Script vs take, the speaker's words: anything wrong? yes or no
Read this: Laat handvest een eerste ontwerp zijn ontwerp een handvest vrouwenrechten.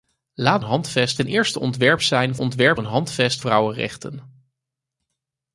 no